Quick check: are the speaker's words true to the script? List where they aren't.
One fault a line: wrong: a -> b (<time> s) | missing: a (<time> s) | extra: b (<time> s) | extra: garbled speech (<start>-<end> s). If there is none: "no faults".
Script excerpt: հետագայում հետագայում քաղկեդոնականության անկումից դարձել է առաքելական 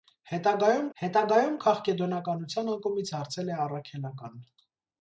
no faults